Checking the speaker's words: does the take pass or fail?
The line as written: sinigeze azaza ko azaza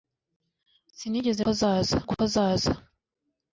pass